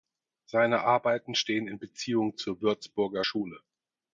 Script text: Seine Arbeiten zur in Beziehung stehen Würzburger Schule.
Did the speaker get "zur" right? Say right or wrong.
wrong